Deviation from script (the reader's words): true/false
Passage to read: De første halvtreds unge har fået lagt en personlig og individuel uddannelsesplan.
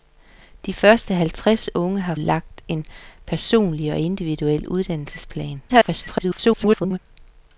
true